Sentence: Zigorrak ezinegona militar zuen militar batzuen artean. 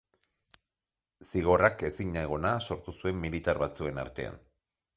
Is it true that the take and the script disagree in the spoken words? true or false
true